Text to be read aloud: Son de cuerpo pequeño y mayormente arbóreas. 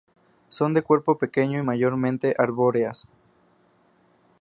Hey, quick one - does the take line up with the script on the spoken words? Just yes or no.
yes